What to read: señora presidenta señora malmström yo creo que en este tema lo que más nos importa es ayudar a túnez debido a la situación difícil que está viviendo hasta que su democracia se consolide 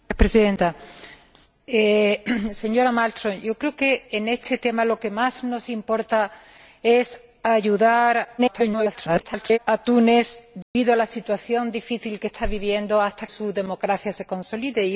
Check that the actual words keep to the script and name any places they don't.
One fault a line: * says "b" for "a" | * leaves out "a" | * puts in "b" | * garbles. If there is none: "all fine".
* garbles
* leaves out "que"